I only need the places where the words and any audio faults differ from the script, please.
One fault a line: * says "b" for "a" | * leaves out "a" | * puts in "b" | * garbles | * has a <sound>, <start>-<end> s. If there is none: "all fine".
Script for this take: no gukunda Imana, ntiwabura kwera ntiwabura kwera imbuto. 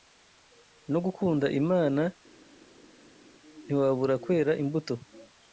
* leaves out "ntiwabura kwera"